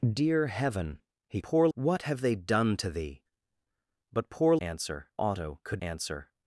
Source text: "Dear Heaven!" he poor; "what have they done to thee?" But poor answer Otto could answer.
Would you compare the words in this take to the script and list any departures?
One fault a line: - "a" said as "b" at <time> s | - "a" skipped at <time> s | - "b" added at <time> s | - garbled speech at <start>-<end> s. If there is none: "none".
none